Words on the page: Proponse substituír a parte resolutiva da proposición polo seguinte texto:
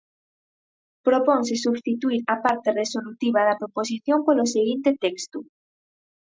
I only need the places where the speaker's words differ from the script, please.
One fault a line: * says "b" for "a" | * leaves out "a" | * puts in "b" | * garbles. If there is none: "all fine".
all fine